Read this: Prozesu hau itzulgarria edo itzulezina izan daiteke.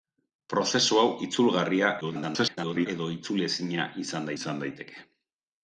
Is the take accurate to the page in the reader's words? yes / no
no